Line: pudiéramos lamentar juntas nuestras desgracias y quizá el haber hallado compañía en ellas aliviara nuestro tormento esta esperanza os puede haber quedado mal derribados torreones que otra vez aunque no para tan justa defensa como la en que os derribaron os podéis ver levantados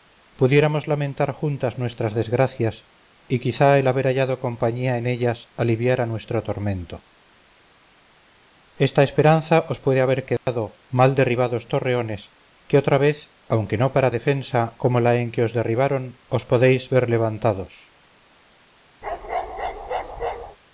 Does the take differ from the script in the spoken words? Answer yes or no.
yes